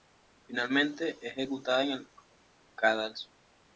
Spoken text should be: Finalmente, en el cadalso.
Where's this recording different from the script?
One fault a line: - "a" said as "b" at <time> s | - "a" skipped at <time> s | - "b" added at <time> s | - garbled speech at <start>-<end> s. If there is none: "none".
- "es ejecutada" added at 1.2 s